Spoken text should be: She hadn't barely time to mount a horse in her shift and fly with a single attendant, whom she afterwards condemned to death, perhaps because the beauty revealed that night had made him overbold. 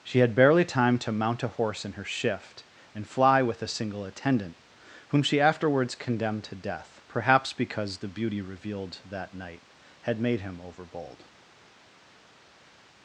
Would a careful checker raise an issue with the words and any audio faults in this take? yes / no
yes